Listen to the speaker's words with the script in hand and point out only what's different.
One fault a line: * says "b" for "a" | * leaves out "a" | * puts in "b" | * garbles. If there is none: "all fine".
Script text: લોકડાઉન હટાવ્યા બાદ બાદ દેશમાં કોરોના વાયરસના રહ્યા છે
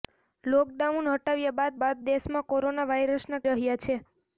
all fine